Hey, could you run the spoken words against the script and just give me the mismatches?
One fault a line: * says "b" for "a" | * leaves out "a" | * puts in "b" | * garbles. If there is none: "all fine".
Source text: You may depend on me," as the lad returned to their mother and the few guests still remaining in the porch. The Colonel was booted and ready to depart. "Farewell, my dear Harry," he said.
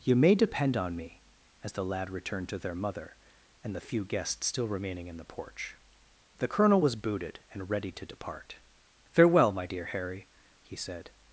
all fine